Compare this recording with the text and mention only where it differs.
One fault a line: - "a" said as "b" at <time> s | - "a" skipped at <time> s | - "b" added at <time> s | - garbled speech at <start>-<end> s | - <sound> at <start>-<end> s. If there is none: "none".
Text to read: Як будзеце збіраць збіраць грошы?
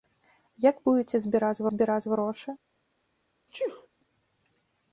- sneeze at 3.5-3.9 s